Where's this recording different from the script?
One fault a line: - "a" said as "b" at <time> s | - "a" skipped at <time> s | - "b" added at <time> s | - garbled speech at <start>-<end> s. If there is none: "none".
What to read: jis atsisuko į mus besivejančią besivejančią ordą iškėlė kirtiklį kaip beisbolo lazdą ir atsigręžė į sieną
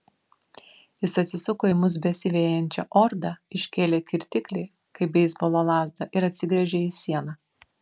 - "besivejančią" skipped at 2.8 s